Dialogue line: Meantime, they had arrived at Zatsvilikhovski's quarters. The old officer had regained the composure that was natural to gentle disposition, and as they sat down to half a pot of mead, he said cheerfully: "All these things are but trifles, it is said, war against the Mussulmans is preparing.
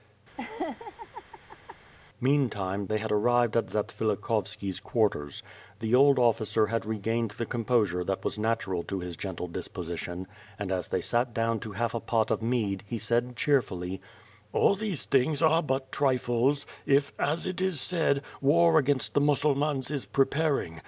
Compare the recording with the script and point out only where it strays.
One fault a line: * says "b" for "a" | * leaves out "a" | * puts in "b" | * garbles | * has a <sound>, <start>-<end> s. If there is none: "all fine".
* has a laugh, 0.4-1.8 s
* puts in "his"
* puts in "if as"